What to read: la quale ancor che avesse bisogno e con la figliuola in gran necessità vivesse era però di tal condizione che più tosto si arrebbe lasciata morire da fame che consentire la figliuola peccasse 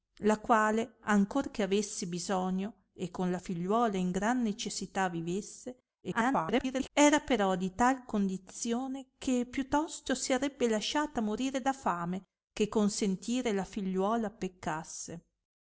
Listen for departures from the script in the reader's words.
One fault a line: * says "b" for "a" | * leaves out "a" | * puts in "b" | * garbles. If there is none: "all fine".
* garbles